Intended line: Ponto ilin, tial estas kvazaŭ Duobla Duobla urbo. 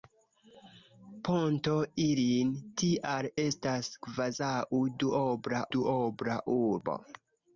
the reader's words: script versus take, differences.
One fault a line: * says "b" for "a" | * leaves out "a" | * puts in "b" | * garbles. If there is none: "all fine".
all fine